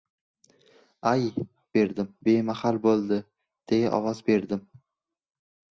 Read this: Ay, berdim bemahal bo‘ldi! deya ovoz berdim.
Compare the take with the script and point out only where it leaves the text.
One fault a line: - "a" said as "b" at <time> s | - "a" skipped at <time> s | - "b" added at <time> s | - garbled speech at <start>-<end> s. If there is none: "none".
none